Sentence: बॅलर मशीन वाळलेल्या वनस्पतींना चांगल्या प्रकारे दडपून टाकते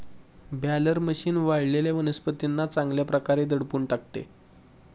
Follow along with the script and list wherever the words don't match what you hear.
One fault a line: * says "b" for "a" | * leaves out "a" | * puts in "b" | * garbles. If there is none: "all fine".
all fine